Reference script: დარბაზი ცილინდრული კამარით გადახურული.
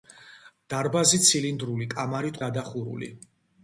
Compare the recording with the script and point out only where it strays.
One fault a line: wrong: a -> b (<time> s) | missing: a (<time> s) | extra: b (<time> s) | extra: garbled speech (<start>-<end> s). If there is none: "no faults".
no faults